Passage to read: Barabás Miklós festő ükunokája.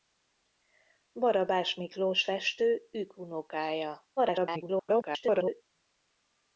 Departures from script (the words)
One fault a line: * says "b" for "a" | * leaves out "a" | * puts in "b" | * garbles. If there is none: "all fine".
* garbles